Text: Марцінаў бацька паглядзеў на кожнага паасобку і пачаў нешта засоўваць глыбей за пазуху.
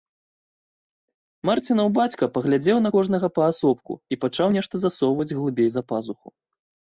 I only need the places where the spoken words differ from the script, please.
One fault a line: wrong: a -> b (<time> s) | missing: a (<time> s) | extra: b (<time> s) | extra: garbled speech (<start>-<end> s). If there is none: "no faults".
no faults